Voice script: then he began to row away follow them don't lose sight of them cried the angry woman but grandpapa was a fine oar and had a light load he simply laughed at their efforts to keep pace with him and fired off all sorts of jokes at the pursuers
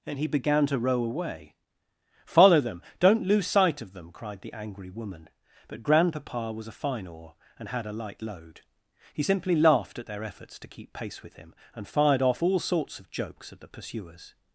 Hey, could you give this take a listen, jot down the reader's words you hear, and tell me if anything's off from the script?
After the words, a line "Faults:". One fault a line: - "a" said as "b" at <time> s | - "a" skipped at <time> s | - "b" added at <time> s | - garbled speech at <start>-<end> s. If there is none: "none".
and he began to row away follow them don't lose sight of them cried the angry woman but grandpapa was a fine oar and had a light load he simply laughed at their efforts to keep pace with him and fired off all sorts of jokes at the pursuers
Faults:
- "then" said as "and" at 0.1 s